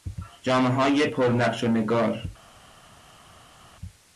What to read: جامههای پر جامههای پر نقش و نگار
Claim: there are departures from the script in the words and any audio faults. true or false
true